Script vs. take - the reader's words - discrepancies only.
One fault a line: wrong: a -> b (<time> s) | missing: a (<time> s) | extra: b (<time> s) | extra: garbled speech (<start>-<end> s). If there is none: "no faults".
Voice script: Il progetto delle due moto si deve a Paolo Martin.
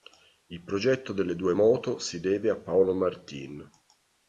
no faults